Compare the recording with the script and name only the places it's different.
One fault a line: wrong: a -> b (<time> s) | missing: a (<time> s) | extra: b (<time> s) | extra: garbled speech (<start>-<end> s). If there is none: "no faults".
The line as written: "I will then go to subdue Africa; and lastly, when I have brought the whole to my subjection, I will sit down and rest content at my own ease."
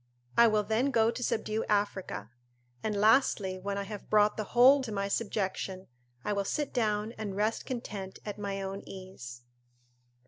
no faults